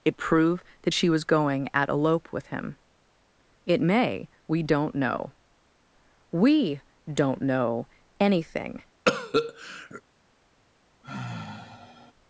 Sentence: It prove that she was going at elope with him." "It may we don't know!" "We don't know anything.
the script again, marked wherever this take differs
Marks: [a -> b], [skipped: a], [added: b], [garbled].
It prove that she was going at elope with him." "It may we don't know!" "We don't know anything.